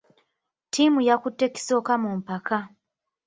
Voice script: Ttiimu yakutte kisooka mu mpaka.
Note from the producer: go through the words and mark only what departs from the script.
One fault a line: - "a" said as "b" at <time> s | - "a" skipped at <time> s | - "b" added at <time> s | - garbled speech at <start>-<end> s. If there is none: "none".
none